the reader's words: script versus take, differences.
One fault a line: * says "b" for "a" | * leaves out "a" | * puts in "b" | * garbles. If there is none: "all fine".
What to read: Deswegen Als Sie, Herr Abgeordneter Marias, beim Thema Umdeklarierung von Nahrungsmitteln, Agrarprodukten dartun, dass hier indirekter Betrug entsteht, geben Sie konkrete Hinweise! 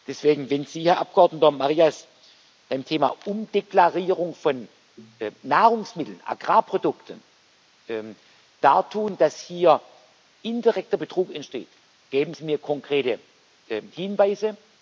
* says "Wenn" for "Als"
* puts in "mir"